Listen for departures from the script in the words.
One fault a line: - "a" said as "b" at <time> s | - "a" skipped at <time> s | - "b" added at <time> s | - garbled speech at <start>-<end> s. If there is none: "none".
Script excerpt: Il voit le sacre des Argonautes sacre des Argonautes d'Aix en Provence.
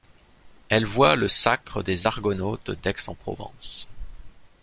- "Il" said as "Elle" at 0.7 s
- "sacre des Argonautes" skipped at 2.7 s